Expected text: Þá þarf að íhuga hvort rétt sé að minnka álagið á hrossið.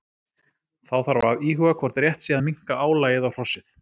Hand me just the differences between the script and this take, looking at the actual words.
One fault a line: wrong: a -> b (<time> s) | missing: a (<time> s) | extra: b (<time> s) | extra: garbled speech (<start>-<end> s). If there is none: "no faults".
no faults